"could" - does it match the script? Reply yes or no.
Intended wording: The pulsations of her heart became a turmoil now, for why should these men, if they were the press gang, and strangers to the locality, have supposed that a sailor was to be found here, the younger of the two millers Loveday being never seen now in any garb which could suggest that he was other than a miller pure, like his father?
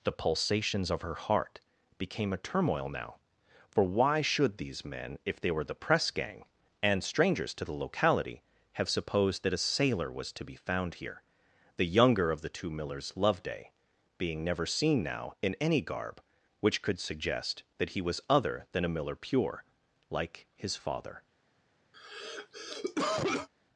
yes